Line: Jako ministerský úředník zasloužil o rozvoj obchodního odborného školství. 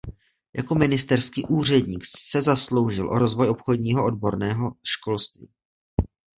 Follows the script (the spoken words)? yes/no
no